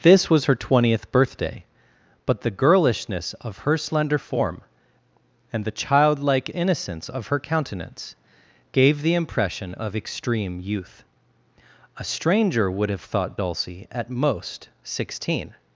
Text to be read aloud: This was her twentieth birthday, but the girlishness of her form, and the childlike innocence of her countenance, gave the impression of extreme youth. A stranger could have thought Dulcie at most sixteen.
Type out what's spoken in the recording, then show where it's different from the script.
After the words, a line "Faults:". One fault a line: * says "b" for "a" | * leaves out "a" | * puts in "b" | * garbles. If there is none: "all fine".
This was her twentieth birthday, but the girlishness of her slender form, and the childlike innocence of her countenance, gave the impression of extreme youth. A stranger would have thought Dulcie at most sixteen.
Faults:
* puts in "slender"
* says "would" for "could"